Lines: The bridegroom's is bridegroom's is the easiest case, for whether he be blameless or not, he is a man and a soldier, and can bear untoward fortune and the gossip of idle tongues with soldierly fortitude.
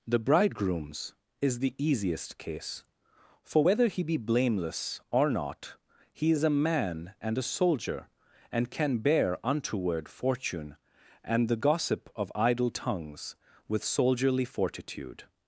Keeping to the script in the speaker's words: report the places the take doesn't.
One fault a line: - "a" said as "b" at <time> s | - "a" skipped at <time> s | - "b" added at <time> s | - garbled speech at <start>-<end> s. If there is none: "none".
- "bridegroom's is" skipped at 1.6 s